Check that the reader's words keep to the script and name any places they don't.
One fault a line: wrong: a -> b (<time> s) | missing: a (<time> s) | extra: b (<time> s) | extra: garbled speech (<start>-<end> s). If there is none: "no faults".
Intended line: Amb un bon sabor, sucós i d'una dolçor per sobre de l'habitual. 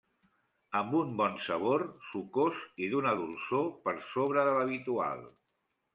no faults